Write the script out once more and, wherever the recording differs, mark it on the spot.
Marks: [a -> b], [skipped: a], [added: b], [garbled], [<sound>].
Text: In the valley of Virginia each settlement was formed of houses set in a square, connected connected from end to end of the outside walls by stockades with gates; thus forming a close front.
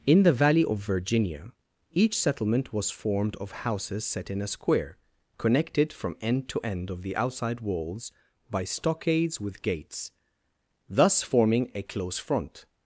In the valley of Virginia each settlement was formed of houses set in a square, connected [skipped: connected] from end to end of the outside walls by stockades with gates; thus forming a close front.